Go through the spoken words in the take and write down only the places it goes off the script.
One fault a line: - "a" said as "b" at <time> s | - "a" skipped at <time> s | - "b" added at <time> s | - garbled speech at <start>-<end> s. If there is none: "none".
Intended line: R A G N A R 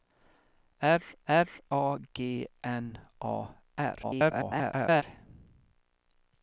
- "r" added at 1.3 s
- garbled speech at 4.0-5.0 s